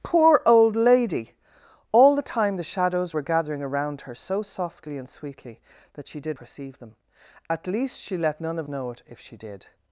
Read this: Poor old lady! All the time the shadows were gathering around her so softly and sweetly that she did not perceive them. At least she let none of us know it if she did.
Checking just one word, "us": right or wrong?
wrong